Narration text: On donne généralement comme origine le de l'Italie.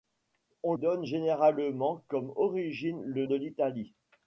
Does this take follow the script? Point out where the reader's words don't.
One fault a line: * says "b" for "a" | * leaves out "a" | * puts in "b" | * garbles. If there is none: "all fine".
all fine